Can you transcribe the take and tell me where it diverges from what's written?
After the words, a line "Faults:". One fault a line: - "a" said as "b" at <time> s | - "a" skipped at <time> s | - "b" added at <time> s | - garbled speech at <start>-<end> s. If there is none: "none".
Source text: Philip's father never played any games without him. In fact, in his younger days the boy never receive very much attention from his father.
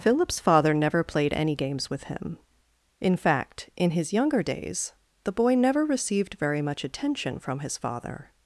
Philip's father never played any games with him. In fact, in his younger days the boy never received very much attention from his father.
Faults:
- "without" said as "with" at 1.9 s
- "receive" said as "received" at 5.8 s